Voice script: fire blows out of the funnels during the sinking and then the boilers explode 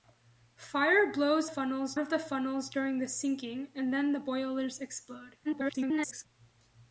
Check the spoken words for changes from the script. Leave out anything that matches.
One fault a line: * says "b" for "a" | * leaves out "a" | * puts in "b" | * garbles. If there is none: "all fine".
* says "funnels" for "out"
* garbles